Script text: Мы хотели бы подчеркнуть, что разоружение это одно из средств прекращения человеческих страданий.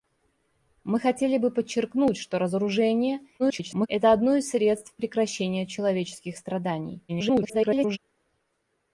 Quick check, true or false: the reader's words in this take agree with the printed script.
false